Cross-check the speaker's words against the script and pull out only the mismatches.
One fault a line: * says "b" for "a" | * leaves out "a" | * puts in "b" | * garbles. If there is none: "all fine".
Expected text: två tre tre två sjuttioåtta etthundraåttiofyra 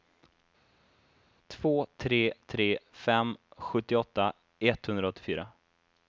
* says "fem" for "två"